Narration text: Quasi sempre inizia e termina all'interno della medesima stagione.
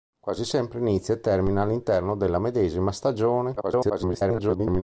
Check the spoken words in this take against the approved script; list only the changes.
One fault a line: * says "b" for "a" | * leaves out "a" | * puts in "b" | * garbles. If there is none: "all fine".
* garbles